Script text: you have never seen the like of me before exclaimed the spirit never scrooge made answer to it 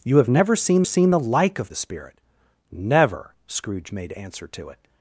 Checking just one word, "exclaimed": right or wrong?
wrong